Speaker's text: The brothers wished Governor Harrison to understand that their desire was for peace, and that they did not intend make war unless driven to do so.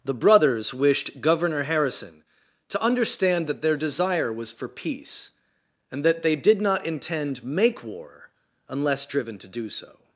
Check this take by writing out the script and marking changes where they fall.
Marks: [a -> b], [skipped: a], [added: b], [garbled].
The brothers wished Governor Harrison to understand that their desire was for peace, and that they did not intend make war unless driven to do so.